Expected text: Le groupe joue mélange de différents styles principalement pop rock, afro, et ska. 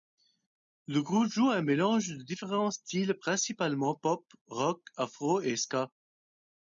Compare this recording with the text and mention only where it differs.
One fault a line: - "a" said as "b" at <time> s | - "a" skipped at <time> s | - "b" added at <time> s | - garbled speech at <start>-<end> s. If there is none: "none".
- "un" added at 1.5 s